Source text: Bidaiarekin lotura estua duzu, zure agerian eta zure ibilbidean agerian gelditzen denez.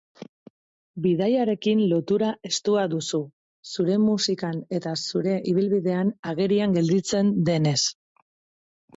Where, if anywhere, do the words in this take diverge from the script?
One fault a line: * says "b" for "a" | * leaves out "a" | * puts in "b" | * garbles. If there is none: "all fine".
* says "musikan" for "agerian"